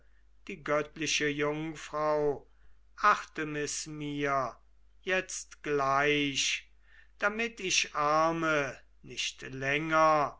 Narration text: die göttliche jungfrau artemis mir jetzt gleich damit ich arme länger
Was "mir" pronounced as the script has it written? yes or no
yes